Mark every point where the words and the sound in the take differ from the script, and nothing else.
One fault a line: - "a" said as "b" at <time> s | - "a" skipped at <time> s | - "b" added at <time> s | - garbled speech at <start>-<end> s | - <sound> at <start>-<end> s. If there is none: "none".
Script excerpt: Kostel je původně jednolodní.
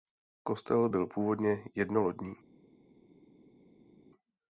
- "je" said as "byl" at 0.9 s